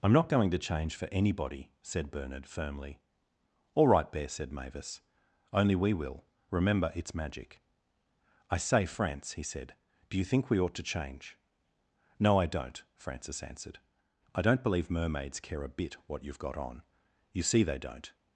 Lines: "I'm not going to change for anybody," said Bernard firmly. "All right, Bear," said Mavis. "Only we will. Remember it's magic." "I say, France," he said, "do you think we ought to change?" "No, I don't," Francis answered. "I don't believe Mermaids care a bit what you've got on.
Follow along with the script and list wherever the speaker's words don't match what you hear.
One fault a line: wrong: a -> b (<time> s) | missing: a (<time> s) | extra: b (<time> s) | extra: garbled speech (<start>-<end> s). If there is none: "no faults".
extra: You see they don't (17.3 s)